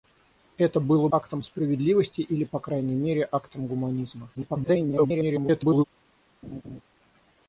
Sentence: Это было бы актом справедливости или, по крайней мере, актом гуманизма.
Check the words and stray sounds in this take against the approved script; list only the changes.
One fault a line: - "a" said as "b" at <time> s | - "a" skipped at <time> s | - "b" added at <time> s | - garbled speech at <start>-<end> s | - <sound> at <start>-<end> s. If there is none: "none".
- "бы" skipped at 1.1 s
- garbled speech at 4.3-5.8 s
- laugh at 6.4-6.8 s